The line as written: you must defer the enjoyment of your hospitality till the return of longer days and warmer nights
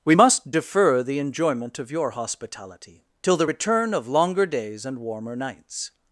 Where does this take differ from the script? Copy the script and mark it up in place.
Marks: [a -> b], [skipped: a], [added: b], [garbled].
[you -> we] must defer the enjoyment of your hospitality till the return of longer days and warmer nights